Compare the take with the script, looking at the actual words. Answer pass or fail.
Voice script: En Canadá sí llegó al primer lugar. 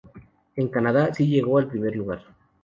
pass